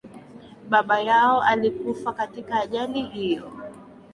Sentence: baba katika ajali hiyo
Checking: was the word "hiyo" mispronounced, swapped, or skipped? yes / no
no